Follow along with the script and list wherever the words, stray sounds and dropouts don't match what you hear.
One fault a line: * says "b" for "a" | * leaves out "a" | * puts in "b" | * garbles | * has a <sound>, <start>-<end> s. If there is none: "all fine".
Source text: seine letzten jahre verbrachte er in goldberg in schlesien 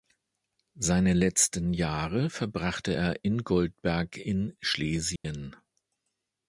* has a dropout, 5.2-5.2 s